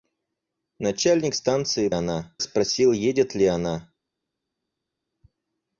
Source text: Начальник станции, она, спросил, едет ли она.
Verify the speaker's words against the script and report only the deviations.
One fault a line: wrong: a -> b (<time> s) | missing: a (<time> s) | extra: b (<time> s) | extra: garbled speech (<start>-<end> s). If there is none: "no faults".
no faults